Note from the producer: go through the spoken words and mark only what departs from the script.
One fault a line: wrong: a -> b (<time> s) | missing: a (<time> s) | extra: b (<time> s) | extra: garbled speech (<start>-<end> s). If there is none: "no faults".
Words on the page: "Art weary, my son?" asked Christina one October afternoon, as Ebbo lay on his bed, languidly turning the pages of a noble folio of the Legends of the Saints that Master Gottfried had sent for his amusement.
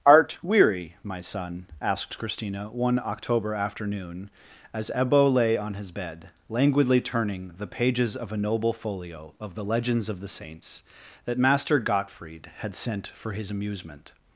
no faults